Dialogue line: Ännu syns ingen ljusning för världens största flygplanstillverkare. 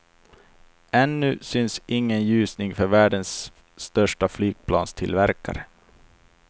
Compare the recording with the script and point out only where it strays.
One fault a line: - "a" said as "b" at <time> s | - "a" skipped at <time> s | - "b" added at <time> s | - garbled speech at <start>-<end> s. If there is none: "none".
none